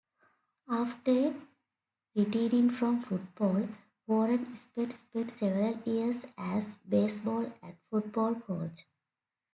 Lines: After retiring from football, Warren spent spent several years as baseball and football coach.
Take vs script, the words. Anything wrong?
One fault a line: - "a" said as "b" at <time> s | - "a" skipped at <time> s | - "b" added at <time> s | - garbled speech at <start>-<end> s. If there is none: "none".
none